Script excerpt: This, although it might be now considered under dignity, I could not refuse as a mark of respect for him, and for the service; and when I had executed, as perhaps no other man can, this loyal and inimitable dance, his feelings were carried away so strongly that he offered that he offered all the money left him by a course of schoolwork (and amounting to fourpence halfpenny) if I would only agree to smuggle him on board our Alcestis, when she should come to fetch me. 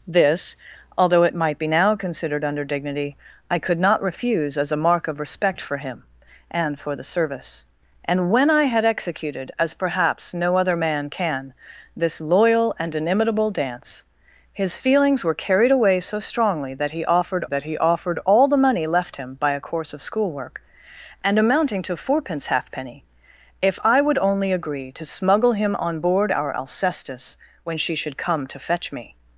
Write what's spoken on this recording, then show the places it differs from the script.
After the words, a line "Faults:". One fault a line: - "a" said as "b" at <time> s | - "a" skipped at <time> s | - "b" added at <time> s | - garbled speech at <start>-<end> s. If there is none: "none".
This, although it might be now considered under dignity, I could not refuse as a mark of respect for him, and for the service; and when I had executed, as perhaps no other man can, this loyal and inimitable dance, his feelings were carried away so strongly that he offered that he offered all the money left him by a course of schoolwork (and amounting to fourpence halfpenny) if I would only agree to smuggle him on board our Alcestis, when she should come to fetch me.
Faults:
none